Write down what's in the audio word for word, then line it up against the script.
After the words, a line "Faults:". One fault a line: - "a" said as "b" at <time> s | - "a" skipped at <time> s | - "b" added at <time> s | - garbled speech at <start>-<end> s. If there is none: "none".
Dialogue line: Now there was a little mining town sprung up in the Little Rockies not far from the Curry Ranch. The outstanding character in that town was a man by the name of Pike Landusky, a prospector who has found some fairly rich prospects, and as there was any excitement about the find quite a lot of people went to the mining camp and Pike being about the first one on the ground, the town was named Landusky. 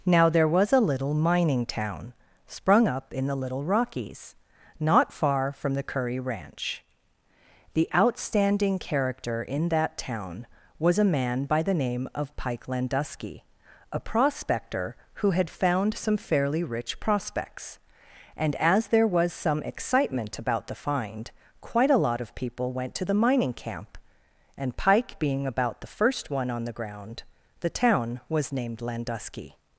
Now there was a little mining town sprung up in the Little Rockies not far from the Curry Ranch. The outstanding character in that town was a man by the name of Pike Landusky, a prospector who had found some fairly rich prospects, and as there was some excitement about the find quite a lot of people went to the mining camp and Pike being about the first one on the ground, the town was named Landusky.
Faults:
- "has" said as "had" at 15.3 s
- "any" said as "some" at 19.3 s